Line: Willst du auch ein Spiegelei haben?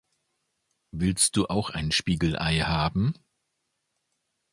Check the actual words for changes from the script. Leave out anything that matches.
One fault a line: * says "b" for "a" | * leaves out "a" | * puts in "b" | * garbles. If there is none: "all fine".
all fine